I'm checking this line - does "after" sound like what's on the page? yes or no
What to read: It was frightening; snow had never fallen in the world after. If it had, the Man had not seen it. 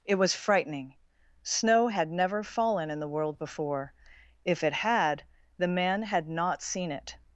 no